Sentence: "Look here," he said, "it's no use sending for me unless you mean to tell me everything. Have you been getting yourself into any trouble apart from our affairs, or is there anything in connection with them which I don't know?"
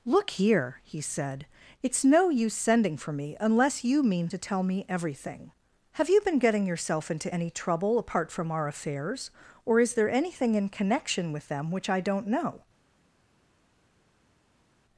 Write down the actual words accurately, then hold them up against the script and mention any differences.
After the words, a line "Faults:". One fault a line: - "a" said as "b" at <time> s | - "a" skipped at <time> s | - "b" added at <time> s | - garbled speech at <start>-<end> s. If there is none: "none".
"Look here," he said, "it's no use sending for me unless you mean to tell me everything. Have you been getting yourself into any trouble apart from our affairs, or is there anything in connection with them which I don't know?"
Faults:
none